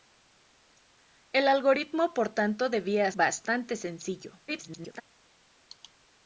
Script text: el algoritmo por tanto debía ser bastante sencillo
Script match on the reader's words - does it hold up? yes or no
no